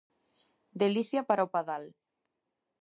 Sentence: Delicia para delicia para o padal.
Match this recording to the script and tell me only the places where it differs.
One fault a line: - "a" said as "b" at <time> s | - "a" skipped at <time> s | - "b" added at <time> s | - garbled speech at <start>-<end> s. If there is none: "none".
- "delicia para" skipped at 1.4 s